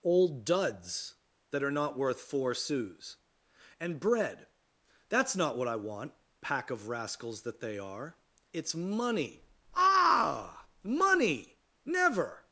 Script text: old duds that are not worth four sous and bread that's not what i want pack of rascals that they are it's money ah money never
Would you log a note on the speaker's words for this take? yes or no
no